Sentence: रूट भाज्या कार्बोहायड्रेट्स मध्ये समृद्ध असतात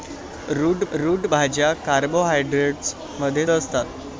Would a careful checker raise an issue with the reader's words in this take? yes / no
yes